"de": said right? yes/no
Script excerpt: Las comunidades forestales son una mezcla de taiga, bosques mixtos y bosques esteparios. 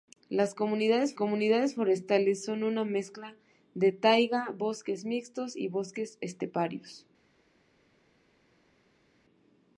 yes